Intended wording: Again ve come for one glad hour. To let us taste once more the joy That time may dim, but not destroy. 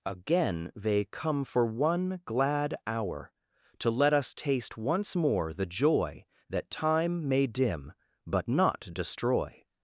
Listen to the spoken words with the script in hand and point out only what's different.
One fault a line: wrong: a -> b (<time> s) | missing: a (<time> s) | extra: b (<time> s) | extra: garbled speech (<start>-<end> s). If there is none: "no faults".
wrong: ve -> they (0.8 s)